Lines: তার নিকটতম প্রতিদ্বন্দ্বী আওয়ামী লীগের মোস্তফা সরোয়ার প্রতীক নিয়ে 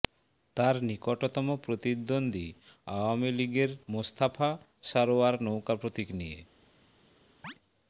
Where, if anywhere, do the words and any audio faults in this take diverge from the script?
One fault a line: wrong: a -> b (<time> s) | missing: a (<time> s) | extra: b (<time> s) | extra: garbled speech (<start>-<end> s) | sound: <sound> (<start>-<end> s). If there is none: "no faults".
extra: নৌকা (5.4 s)
sound: chirp (7.4-7.5 s)